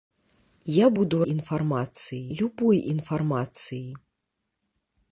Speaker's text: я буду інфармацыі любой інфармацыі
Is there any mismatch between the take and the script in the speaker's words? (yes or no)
no